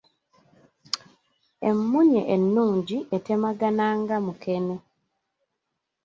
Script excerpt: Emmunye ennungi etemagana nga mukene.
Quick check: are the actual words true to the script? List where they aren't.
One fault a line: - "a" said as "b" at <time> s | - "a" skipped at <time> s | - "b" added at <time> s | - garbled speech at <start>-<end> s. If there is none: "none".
none